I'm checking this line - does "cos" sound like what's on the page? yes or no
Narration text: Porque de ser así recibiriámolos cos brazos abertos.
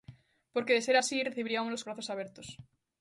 no